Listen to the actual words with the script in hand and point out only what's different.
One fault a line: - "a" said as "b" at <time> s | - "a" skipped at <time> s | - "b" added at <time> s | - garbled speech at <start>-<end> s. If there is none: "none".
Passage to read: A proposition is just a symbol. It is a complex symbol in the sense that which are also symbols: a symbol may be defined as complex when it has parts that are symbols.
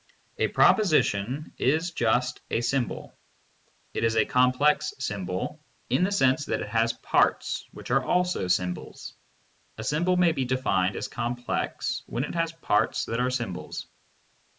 - "it has parts" added at 6.6 s